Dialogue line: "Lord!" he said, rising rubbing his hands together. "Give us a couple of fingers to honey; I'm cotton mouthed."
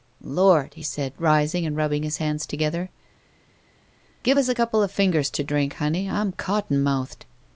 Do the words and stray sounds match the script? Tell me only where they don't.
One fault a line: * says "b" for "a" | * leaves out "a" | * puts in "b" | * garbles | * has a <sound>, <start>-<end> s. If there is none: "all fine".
* puts in "and"
* puts in "drink"